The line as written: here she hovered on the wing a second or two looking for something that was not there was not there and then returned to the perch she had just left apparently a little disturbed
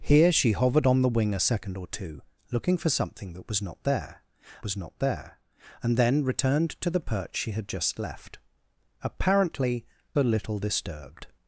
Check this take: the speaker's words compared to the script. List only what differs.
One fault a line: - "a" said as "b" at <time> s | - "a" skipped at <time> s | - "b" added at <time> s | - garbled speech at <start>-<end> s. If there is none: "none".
none